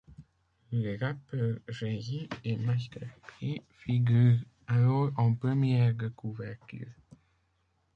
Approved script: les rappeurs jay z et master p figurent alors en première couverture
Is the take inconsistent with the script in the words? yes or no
yes